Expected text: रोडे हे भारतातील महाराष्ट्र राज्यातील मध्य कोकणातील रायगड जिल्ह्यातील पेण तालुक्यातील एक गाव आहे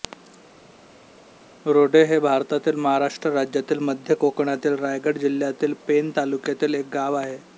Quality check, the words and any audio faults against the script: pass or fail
pass